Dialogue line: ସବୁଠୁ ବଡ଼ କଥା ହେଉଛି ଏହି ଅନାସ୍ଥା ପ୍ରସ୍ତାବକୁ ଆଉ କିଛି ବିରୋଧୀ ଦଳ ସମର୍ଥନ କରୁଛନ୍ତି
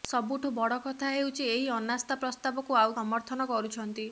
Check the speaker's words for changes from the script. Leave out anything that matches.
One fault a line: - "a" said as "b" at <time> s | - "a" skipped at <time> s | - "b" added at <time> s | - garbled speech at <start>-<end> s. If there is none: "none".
- "କିଛି ବିରୋଧୀ ଦଳ" skipped at 3.0 s